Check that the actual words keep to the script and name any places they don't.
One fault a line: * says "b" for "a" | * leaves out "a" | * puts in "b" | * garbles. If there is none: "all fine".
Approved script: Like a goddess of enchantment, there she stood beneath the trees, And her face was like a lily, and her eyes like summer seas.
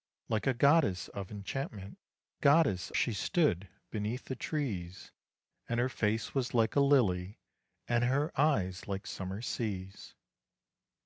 * says "goddess" for "there"